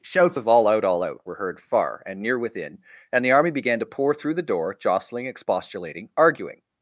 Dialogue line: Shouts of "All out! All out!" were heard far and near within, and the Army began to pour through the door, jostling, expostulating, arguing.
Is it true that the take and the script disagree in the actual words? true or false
false